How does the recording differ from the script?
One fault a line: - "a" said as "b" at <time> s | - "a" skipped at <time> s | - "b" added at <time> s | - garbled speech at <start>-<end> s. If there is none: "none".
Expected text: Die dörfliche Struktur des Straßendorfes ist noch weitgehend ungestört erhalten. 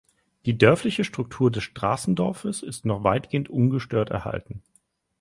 none